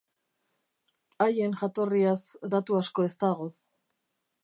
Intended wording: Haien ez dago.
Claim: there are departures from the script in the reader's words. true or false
true